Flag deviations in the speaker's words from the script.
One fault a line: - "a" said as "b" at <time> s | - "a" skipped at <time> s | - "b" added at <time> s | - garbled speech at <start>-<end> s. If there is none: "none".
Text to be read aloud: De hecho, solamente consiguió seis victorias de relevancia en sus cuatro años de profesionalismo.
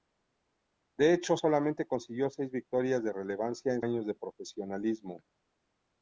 - "sus cuatro" skipped at 3.8 s